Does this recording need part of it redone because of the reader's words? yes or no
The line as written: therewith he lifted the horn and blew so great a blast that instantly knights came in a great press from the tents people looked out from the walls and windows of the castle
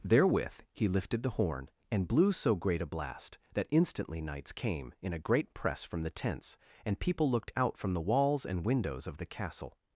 yes